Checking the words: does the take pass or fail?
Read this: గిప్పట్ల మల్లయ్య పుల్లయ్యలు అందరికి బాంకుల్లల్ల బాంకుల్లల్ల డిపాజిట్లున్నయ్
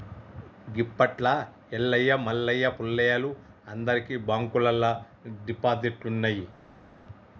fail